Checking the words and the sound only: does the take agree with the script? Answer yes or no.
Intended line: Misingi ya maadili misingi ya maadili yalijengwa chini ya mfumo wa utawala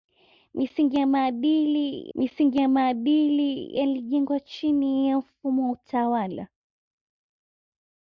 yes